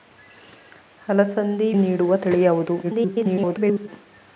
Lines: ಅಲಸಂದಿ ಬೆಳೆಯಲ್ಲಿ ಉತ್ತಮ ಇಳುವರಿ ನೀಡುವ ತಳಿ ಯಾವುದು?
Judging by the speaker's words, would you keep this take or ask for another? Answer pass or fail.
fail